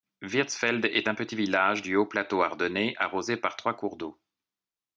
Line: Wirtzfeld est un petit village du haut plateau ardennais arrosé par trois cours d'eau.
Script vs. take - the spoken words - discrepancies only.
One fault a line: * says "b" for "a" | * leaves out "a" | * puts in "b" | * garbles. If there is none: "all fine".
all fine